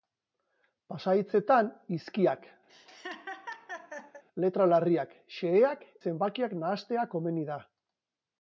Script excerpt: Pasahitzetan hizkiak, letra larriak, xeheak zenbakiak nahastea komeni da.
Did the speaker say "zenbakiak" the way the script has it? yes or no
yes